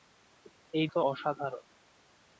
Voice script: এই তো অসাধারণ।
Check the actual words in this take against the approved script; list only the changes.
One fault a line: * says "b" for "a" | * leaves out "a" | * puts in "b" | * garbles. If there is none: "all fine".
all fine